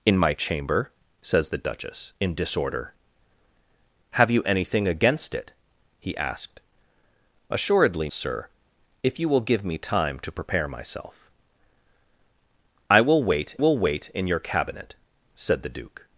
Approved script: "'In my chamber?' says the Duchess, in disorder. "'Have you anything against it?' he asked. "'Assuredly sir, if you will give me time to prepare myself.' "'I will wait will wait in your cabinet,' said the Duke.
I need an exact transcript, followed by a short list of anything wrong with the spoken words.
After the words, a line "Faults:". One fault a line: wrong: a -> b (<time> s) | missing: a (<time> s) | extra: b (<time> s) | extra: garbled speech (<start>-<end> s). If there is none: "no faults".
"'In my chamber?' says the Duchess, in disorder. "'Have you anything against it?' he asked. "'Assuredly sir, if you will give me time to prepare myself.' "'I will wait will wait in your cabinet,' said the Duke.
Faults:
no faults